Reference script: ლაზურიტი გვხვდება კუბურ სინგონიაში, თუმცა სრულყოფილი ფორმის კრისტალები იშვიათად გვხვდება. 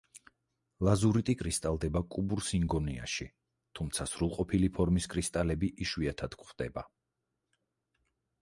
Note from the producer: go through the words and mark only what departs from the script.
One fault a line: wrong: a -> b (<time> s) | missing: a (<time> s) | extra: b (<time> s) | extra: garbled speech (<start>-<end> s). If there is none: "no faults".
wrong: გვხვდება -> კრისტალდება (1.4 s)